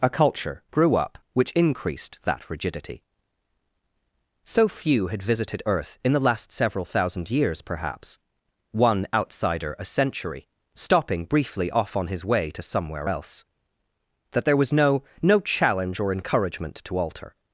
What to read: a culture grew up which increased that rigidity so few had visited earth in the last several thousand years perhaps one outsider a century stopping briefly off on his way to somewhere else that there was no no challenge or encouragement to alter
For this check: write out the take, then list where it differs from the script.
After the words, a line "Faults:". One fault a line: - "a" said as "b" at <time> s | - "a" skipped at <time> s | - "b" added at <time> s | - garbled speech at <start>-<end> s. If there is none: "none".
a culture grew up which increased that rigidity so few had visited earth in the last several thousand years perhaps one outsider a century stopping briefly off on his way to somewhere else that there was no no challenge or encouragement to alter
Faults:
none